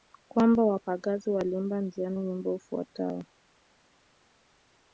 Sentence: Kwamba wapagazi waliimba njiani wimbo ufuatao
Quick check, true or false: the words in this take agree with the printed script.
true